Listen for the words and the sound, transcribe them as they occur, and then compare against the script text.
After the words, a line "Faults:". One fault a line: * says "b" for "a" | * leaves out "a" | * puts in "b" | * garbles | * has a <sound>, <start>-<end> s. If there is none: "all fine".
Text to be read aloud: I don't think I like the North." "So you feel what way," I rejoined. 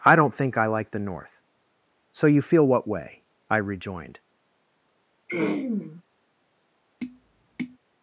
I don't think I like the North." "So you feel what way," I rejoined.
Faults:
* has a throat clearing, 5.3-6.0 s
* has a tap, 7.0-7.8 s